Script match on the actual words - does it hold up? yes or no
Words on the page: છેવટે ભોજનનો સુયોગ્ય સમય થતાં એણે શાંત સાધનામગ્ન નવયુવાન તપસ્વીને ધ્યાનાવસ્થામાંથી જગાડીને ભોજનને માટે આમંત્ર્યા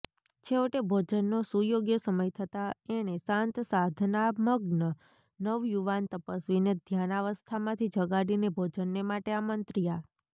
yes